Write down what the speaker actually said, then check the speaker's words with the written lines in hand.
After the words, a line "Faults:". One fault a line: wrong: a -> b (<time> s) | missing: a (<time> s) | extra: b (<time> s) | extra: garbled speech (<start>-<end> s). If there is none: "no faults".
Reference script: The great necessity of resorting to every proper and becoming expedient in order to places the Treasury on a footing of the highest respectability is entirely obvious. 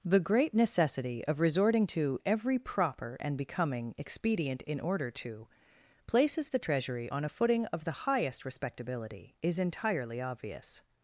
The great necessity of resorting to every proper and becoming expedient in order to places the Treasury on a footing of the highest respectability is entirely obvious.
Faults:
no faults